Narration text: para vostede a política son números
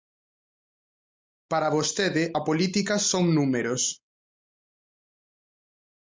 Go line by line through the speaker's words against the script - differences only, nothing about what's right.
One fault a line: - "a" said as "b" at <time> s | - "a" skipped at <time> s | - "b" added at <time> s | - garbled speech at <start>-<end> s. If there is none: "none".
none